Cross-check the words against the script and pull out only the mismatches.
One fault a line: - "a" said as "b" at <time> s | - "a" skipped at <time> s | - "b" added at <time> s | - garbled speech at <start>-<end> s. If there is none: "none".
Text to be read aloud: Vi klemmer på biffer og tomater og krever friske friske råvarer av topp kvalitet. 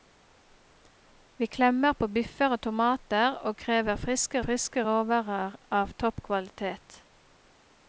none